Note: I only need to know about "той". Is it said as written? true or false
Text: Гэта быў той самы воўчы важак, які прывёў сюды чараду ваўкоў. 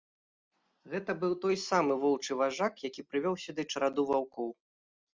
true